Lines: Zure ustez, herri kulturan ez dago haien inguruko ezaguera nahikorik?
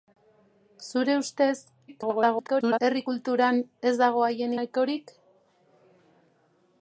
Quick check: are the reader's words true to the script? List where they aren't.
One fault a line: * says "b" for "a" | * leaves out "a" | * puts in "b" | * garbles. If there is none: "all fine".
* garbles
* leaves out "inguruko ezaguera"